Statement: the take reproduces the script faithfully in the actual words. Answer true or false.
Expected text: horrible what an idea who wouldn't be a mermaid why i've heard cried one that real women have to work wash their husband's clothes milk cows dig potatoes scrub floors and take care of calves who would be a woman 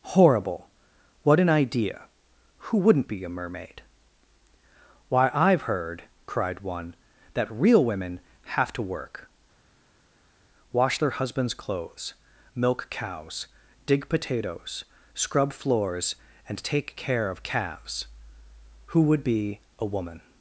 true